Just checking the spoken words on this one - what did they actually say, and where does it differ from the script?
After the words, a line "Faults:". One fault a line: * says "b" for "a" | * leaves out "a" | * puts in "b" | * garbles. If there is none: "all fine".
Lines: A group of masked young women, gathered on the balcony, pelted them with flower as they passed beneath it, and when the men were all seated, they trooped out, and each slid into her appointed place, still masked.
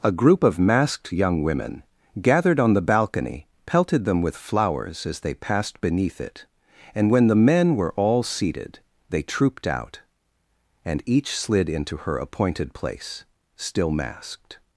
A group of masked young women, gathered on the balcony, pelted them with flowers as they passed beneath it, and when the men were all seated, they trooped out, and each slid into her appointed place, still masked.
Faults:
* says "flowers" for "flower"